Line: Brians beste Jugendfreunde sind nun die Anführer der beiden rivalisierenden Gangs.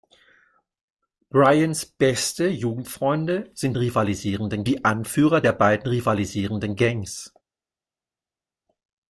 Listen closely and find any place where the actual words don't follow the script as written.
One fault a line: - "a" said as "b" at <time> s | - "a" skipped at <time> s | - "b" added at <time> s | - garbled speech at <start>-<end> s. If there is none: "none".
- "nun" said as "rivalisierenden" at 3.8 s